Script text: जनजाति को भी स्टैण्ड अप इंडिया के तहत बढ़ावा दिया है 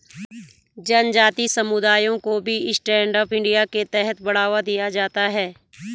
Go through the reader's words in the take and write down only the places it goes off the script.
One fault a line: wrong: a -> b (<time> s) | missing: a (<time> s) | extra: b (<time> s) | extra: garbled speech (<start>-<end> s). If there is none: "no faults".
extra: समुदायों (1.5 s)
extra: जाता (4.9 s)